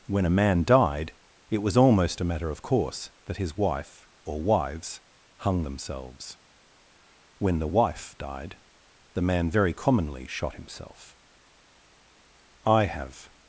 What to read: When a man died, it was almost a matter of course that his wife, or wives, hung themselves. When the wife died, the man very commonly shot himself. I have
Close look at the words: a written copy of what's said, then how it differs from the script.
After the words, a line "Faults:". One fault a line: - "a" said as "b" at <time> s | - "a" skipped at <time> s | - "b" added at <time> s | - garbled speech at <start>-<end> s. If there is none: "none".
When a man died, it was almost a matter of course that his wife, or wives, hung themselves. When the wife died, the man very commonly shot himself. I have
Faults:
none